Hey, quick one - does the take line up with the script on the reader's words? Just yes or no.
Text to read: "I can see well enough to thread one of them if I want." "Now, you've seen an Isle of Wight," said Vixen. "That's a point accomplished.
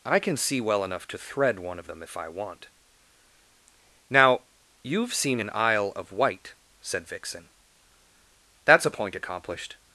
yes